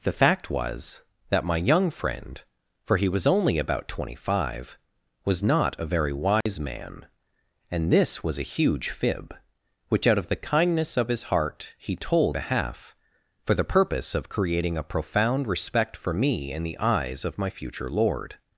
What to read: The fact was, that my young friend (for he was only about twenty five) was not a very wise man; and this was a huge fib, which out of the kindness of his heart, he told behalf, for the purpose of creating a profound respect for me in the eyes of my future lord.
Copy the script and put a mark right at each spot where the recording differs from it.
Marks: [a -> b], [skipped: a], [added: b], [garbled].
The fact was, that my young friend (for he was only about twenty five) was not a very wise man; and this was a huge fib, which out of the kindness of his heart, he told behalf, for the purpose of creating a profound respect for me in the eyes of my future lord.